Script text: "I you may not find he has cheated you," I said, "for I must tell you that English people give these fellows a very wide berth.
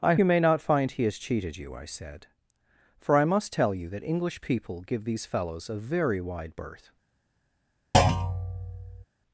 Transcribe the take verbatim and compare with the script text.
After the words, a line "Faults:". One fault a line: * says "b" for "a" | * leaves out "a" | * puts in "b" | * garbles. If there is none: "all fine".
"I you may not find he has cheated you," I said, "for I must tell you that English people give these fellows a very wide berth.
Faults:
all fine